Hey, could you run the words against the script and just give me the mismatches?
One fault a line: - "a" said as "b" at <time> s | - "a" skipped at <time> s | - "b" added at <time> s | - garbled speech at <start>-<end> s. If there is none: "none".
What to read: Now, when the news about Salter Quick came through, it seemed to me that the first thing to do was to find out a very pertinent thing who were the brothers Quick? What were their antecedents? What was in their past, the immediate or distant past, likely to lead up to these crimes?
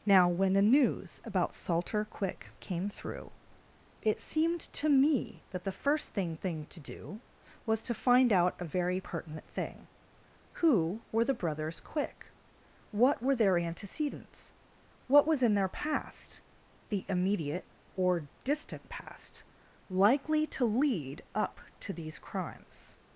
- "thing" added at 6.4 s